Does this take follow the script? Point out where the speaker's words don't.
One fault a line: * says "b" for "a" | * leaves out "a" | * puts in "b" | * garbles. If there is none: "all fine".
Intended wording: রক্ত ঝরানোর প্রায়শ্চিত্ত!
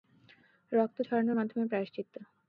* puts in "মাধ্যমে"